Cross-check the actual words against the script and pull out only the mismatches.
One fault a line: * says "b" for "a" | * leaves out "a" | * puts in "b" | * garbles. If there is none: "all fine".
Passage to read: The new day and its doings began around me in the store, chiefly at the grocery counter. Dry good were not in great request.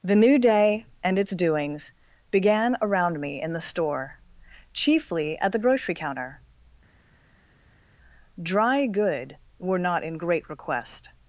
all fine